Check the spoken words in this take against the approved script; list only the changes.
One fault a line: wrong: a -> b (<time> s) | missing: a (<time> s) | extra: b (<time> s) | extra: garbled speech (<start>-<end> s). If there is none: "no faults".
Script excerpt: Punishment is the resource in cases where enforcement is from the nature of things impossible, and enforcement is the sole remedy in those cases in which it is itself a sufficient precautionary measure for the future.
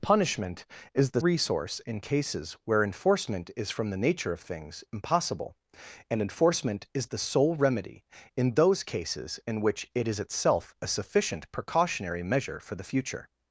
no faults